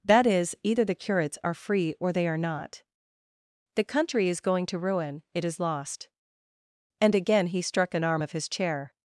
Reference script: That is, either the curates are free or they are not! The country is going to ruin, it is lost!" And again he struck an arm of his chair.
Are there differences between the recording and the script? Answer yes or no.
no